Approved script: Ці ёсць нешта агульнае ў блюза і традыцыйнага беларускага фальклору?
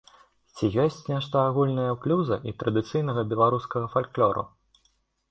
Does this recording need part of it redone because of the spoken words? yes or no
no